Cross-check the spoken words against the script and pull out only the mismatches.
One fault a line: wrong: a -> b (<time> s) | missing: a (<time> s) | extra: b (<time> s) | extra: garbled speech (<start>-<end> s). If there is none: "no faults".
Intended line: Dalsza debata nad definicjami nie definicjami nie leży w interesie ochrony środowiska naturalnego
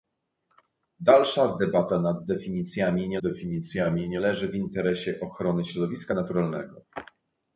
no faults